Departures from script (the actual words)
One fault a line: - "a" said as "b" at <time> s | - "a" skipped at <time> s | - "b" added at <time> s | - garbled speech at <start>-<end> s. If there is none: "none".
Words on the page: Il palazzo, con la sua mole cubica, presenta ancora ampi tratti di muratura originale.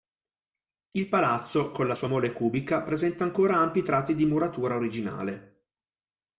none